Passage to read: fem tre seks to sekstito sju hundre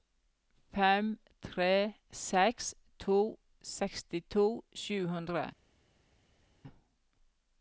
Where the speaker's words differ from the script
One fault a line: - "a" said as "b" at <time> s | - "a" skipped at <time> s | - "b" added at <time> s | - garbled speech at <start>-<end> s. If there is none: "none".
none